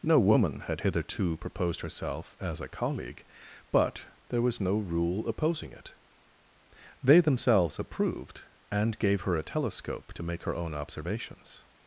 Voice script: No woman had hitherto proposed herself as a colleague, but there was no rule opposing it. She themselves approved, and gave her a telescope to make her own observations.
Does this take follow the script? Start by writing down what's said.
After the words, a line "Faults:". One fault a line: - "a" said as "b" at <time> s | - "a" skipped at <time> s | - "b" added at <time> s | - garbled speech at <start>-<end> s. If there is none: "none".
No woman had hitherto proposed herself as a colleague, but there was no rule opposing it. They themselves approved, and gave her a telescope to make her own observations.
Faults:
- "She" said as "They" at 7.0 s